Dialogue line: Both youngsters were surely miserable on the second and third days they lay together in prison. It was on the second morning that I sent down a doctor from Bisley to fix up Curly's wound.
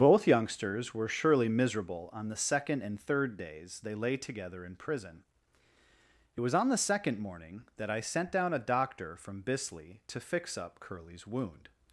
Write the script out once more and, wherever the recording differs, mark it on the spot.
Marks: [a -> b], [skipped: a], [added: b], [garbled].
Both youngsters were surely miserable on the second and third days they lay together in prison. It was on the second morning that I sent down a doctor from Bisley to fix up Curly's wound.